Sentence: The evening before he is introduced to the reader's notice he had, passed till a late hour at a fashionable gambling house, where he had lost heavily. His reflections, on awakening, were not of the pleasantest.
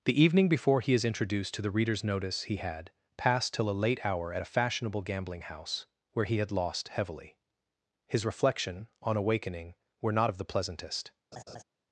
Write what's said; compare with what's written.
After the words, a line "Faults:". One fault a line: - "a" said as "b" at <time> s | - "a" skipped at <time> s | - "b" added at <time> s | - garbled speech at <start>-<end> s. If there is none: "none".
The evening before he is introduced to the reader's notice he had, passed till a late hour at a fashionable gambling house, where he had lost heavily. His reflection, on awakening, were not of the pleasantest.
Faults:
- "reflections" said as "reflection" at 8.2 s